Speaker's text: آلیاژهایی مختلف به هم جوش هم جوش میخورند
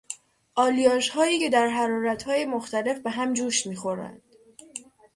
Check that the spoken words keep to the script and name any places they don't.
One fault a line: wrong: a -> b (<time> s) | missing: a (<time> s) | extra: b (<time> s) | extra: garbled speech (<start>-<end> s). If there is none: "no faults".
extra: که در حرارتهای (1.4 s)
missing: هم جوش (3.7 s)